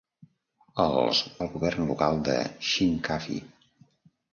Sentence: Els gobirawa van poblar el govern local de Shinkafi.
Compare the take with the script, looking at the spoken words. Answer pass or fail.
fail